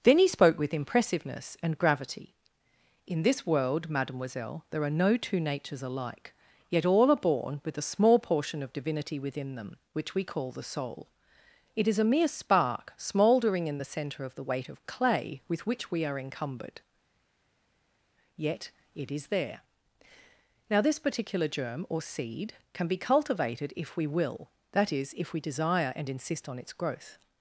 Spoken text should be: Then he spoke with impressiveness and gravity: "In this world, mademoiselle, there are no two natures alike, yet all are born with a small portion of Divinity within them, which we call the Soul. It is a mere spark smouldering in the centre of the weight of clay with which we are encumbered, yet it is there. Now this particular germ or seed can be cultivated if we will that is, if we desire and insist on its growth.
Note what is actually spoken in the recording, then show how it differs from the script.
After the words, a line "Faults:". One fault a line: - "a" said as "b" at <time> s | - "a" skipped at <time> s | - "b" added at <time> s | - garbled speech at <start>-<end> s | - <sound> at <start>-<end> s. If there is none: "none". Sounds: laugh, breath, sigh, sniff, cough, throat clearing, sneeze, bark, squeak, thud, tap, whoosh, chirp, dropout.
Then he spoke with impressiveness and gravity: "In this world, mademoiselle, there are no two natures alike, yet all are born with a small portion of Divinity within them, which we call the Soul. It is a mere spark smouldering in the centre of the weight of clay with which we are encumbered, yet it is there. Now this particular germ or seed can be cultivated if we will that is, if we desire and insist on its growth.
Faults:
none